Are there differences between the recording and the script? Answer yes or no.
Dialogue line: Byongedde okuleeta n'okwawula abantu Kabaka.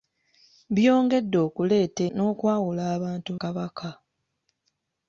no